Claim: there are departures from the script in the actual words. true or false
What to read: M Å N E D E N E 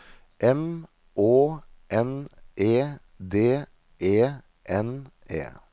false